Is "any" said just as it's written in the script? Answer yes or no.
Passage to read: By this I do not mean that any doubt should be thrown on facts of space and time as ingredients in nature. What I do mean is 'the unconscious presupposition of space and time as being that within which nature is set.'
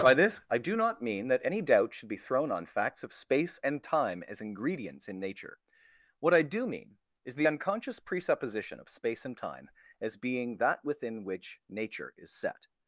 yes